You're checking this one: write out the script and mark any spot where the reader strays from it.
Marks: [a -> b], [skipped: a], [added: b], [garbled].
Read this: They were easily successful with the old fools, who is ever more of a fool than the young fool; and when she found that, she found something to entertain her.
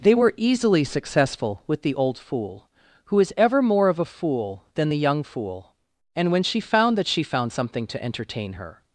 They were easily successful with the old [fools, -> fool] who is ever more of a fool than the young fool; and when she found that, she found something to entertain her.